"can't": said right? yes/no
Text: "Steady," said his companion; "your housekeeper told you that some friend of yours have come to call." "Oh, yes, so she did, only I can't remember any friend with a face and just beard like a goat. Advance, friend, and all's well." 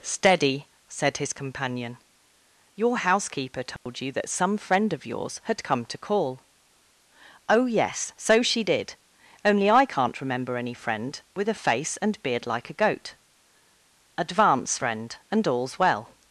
yes